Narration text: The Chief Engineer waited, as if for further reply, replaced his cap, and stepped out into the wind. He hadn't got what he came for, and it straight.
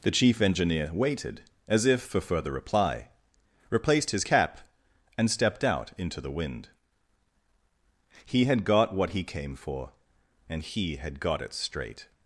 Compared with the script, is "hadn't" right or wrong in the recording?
wrong